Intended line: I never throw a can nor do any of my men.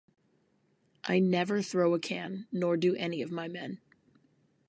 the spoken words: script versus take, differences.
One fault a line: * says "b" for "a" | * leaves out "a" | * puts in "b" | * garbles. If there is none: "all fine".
all fine